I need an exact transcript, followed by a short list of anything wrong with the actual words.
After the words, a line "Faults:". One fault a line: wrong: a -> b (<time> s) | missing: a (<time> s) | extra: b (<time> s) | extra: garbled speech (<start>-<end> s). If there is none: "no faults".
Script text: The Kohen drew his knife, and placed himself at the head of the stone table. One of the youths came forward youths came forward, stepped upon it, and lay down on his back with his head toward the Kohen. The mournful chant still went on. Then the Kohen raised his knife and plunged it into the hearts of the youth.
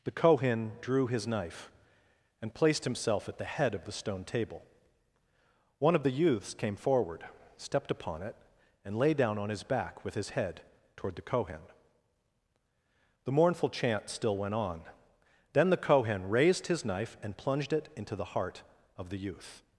The Kohen drew his knife, and placed himself at the head of the stone table. One of the youths came forward, stepped upon it, and lay down on his back with his head toward the Kohen. The mournful chant still went on. Then the Kohen raised his knife and plunged it into the heart of the youth.
Faults:
missing: youths came forward (7.3 s)
wrong: hearts -> heart (18.3 s)